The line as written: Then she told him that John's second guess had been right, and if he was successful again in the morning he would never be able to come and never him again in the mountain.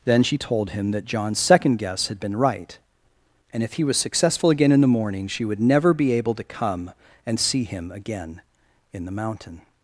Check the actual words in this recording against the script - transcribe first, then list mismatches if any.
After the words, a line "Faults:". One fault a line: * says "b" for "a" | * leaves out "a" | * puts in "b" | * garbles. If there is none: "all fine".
Then she told him that John's second guess had been right, and if he was successful again in the morning she would never be able to come and see him again in the mountain.
Faults:
* says "she" for "he"
* says "see" for "never"